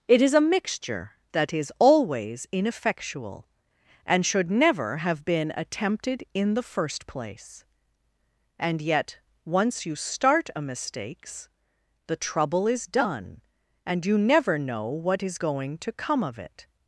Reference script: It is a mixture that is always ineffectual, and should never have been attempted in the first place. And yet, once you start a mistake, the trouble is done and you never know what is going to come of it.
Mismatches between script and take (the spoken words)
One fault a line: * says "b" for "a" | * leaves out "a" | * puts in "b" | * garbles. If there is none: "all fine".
* says "mistakes" for "mistake"